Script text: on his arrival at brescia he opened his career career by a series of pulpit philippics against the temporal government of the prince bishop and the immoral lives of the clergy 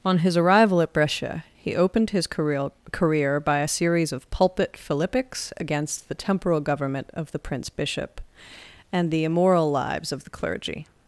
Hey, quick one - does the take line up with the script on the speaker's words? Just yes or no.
yes